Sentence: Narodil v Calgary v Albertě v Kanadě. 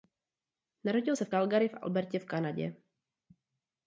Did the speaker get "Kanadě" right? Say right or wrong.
right